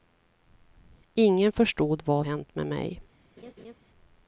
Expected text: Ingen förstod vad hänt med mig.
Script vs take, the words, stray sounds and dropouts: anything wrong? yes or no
yes